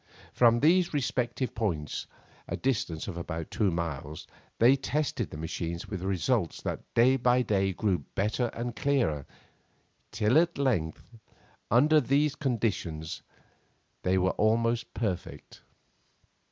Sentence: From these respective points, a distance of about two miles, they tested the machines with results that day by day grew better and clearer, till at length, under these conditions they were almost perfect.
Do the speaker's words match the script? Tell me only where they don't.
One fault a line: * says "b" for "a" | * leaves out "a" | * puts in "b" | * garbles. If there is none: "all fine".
all fine